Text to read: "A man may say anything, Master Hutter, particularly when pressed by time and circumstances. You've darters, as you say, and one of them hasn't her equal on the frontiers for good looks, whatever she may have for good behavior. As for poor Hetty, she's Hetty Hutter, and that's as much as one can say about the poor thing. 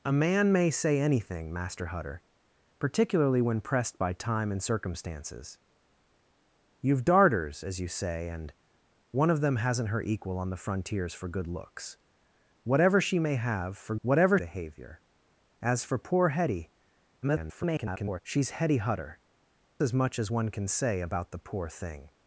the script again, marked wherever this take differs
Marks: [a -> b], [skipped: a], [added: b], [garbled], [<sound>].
"A man may say anything, Master Hutter, particularly when pressed by time and circumstances. You've darters, as you say, and one of them hasn't her equal on the frontiers for good looks, whatever she may have for [good -> whatever] behavior. As for poor Hetty, [garbled] she's Hetty Hutter, [skipped: and that's] as much as one can say about the poor thing.